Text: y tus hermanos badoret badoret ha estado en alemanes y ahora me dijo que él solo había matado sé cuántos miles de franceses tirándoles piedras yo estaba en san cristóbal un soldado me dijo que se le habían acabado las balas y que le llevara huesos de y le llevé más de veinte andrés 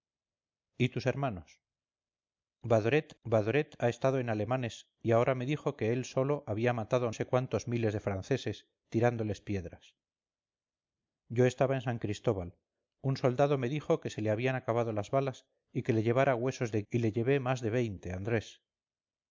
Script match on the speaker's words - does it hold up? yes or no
yes